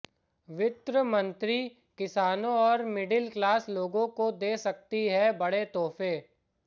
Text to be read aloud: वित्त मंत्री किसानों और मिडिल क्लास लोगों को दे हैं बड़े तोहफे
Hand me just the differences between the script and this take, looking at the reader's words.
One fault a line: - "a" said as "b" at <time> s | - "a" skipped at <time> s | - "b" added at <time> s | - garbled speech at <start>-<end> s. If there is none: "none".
- "सकती" added at 4.6 s